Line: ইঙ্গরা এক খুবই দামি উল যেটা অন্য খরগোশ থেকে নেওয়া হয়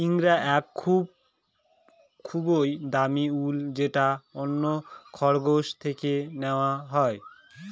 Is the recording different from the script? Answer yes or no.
no